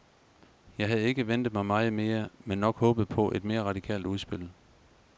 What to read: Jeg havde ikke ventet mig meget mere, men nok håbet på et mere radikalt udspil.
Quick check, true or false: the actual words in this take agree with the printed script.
true